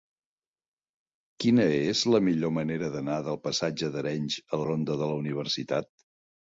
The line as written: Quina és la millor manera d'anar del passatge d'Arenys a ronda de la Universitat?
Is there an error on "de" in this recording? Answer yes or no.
no